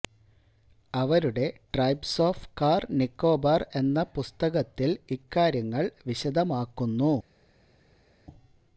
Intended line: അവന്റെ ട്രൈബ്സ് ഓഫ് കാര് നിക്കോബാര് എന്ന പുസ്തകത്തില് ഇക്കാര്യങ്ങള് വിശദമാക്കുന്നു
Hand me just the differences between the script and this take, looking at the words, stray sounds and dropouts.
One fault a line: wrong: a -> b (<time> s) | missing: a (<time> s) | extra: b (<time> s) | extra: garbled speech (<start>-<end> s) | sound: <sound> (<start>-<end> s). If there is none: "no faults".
wrong: അവന്റെ -> അവരുടെ (0.9 s)